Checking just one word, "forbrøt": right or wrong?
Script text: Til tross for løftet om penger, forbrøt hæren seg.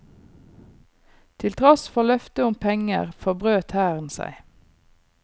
right